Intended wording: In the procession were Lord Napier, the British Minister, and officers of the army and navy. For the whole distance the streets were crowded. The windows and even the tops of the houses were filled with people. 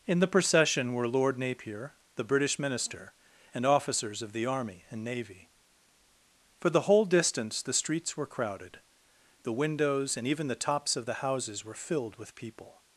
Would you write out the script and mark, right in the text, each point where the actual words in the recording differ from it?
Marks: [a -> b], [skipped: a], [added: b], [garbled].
In the procession were Lord Napier, the British Minister, and officers of the army and navy. For the whole distance the streets were crowded. The windows and even the tops of the houses were filled with people.